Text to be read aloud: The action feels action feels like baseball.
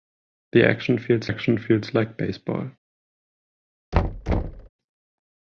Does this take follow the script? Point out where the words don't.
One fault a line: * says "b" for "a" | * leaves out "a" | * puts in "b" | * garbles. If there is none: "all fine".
all fine